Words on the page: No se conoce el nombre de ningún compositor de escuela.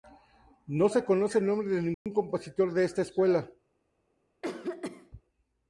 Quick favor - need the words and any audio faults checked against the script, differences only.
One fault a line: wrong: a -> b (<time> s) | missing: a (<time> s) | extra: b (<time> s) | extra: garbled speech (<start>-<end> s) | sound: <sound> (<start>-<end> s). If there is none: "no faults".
sound: dropout (1.9-2.1 s)
extra: esta (2.9 s)
sound: cough (4.4-5.2 s)